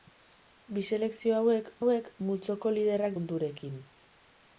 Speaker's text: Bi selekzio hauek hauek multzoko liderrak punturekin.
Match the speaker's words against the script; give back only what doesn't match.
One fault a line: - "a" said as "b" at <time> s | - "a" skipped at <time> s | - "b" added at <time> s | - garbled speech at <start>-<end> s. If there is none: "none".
none